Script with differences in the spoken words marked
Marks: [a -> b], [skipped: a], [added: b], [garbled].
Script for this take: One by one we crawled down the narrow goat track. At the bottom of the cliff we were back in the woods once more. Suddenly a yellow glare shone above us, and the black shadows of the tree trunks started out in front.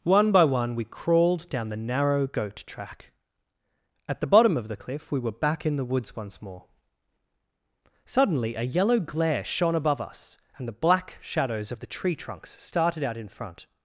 One by one we crawled down the narrow goat track. At the bottom of the cliff we were back in the woods once more. Suddenly a yellow glare shone above us, and the black shadows of the tree trunks started out in front.